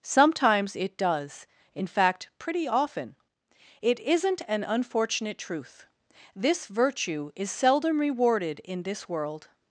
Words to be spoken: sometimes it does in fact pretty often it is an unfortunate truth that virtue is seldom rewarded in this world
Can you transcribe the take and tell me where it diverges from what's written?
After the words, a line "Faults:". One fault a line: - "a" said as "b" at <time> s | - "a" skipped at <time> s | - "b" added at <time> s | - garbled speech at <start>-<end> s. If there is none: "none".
sometimes it does in fact pretty often it isn't an unfortunate truth this virtue is seldom rewarded in this world
Faults:
- "is" said as "isn't" at 4.0 s
- "that" said as "this" at 6.3 s